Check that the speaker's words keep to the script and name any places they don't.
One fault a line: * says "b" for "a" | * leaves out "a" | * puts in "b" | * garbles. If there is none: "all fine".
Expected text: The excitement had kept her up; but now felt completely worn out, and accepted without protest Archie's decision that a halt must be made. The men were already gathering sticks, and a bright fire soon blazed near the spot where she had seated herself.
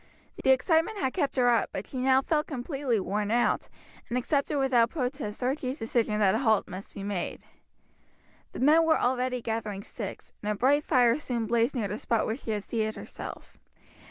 * puts in "she"